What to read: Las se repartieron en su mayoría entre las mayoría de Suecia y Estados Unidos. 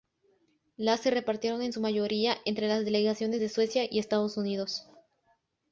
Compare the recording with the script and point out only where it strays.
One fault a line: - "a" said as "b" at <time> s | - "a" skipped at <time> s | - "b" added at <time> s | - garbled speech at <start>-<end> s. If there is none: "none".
- "mayoría" said as "delegaciones" at 2.9 s